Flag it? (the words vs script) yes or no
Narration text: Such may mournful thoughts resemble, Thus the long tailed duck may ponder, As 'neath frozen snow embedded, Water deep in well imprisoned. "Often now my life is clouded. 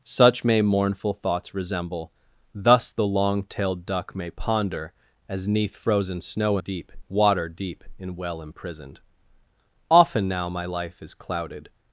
yes